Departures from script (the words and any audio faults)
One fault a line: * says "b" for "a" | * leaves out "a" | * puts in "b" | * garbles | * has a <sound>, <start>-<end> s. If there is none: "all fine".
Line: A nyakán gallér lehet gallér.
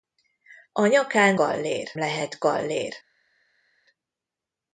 all fine